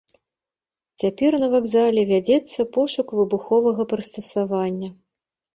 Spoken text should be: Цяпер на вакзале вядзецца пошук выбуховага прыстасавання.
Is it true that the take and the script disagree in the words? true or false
false